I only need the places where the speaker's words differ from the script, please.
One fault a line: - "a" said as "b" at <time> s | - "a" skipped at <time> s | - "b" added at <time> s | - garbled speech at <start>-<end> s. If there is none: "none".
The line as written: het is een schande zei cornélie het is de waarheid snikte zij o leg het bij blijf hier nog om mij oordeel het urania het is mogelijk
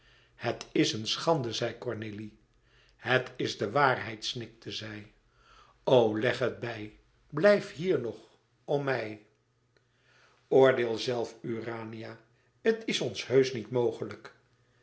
- "het" said as "zelf" at 11.0 s
- "ons heusch niet" added at 13.0 s